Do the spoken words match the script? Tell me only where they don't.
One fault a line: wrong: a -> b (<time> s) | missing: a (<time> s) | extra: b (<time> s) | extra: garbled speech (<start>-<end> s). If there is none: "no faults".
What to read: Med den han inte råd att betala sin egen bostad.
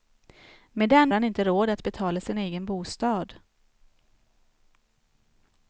no faults